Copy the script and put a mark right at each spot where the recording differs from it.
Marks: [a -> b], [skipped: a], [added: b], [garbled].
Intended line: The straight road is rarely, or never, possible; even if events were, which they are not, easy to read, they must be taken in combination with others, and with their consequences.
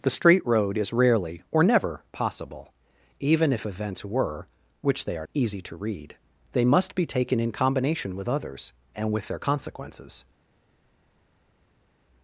The straight road is rarely, or never, possible; even if events were, which they are [skipped: not,] easy to read, they must be taken in combination with others, and with their consequences.